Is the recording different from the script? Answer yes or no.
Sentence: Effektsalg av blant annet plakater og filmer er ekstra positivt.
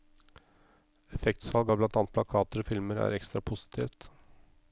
no